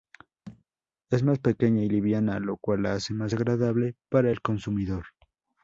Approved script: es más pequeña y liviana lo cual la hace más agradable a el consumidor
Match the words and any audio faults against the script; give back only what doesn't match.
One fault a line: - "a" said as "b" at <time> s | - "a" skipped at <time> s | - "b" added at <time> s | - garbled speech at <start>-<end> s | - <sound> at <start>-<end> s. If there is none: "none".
- thud at 0.5-0.6 s
- "a" said as "para" at 4.1 s